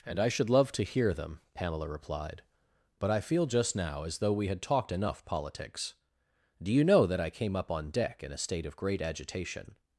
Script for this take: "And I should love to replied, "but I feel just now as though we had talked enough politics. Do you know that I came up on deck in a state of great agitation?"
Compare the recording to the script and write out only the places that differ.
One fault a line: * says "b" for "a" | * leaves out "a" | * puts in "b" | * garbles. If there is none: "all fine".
* puts in "hear them Pamela"